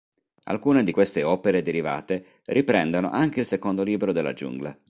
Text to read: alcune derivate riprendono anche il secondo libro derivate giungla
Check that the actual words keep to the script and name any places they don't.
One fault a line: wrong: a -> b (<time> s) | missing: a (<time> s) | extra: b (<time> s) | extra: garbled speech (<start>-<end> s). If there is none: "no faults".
extra: di queste opere (0.8 s)
wrong: derivate -> della (4.1 s)